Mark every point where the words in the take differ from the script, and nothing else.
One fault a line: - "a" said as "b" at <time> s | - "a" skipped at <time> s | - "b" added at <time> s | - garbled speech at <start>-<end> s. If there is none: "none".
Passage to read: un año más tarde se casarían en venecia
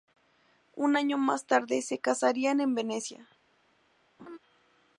none